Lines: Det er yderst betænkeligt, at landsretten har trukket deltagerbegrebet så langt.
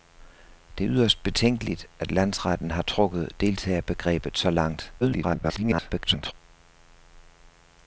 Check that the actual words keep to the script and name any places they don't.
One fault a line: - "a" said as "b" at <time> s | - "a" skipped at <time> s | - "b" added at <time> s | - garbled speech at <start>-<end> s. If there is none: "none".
- garbled speech at 5.0-6.3 s